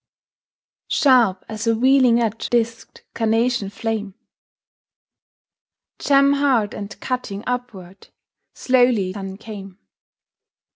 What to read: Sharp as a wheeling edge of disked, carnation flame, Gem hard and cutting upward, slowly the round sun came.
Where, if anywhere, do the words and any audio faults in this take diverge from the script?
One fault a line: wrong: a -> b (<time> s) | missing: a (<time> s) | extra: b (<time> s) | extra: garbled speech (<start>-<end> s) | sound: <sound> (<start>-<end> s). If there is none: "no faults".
missing: of (2.5 s)
missing: the round (9.1 s)